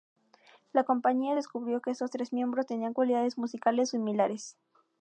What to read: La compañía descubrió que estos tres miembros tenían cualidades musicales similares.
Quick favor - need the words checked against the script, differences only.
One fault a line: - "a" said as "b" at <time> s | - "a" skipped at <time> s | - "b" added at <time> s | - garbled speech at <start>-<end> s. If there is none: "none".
none